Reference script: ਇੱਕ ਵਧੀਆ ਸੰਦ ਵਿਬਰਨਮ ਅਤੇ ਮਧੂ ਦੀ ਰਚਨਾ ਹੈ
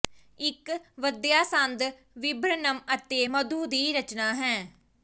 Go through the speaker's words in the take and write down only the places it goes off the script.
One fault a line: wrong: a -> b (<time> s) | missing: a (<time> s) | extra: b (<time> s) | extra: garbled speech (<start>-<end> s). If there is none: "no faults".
no faults